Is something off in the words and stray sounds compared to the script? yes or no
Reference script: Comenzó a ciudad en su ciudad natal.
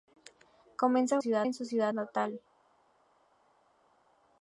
no